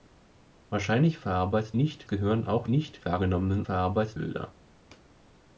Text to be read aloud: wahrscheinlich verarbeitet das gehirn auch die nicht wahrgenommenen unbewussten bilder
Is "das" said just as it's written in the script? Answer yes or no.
no